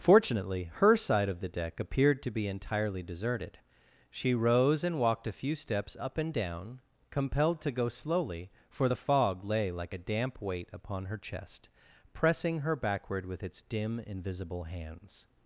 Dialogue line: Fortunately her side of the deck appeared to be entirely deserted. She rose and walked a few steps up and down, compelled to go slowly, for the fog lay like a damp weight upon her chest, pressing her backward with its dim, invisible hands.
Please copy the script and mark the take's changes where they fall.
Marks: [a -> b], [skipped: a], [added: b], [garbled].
Fortunately her side of the deck appeared to be entirely deserted. She rose and walked a few steps up and down, compelled to go slowly, for the fog lay like a damp weight upon her chest, pressing her backward with its dim, invisible hands.